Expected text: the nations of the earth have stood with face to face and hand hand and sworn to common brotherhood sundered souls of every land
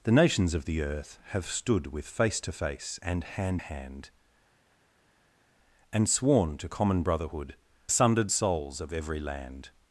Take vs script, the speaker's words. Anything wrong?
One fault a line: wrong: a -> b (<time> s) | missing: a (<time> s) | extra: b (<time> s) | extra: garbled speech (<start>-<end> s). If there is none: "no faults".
no faults